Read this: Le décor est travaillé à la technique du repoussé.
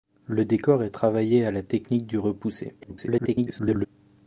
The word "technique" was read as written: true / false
true